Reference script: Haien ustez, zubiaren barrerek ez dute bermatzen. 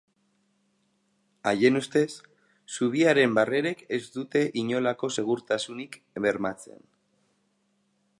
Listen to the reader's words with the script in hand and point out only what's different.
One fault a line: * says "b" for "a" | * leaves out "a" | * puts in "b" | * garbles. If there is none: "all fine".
* puts in "inolako segurtasunik"